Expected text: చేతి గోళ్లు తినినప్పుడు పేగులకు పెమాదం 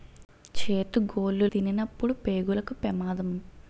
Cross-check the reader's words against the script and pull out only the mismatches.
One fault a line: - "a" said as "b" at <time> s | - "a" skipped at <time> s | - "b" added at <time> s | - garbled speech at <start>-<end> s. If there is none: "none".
none